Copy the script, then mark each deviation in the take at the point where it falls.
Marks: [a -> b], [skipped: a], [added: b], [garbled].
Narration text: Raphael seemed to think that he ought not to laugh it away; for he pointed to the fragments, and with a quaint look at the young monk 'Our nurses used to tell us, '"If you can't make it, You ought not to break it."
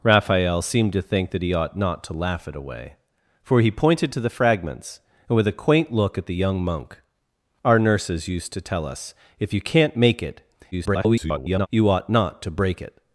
Raphael seemed to think that he ought not to laugh it away; for he pointed to the fragments, and with a quaint look at the young monk 'Our nurses used to tell us, '"If you can't make it, [garbled] You ought not to break it."